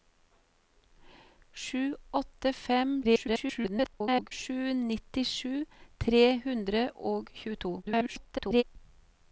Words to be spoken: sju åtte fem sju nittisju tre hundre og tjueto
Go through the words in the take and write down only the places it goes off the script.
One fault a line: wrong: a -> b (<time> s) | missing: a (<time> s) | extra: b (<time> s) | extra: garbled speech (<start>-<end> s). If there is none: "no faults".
extra: garbled speech (3.0-4.3 s)
extra: garbled speech (7.8-8.6 s)